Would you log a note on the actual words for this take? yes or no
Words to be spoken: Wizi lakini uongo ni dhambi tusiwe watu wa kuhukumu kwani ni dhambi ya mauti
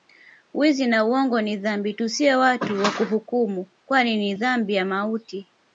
yes